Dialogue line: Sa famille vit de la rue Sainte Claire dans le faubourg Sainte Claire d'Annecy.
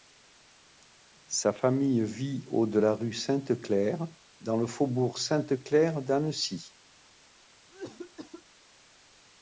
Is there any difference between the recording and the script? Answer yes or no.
yes